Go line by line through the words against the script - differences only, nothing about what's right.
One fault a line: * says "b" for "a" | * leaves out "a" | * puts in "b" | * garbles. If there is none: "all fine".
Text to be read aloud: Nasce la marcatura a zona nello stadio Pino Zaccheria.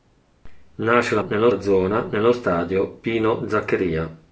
* says "nello" for "marcatura"